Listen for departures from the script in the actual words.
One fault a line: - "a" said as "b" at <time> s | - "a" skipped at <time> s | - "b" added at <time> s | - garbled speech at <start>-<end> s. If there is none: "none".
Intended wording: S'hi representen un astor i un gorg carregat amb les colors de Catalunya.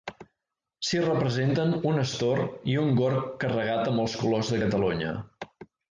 - "les" said as "els" at 4.0 s